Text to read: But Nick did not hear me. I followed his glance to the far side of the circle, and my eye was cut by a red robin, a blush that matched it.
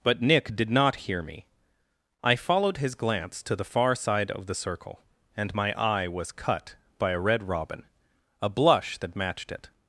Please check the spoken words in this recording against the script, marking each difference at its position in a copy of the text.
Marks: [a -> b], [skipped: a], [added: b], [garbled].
But Nick did not hear me. I followed his glance to the far side of the circle, and my eye was cut by a red robin, a blush that matched it.